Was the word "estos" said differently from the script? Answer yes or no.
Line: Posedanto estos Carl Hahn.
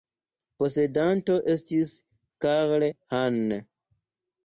yes